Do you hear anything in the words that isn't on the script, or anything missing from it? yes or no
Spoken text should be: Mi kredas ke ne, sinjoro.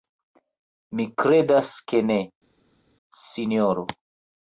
no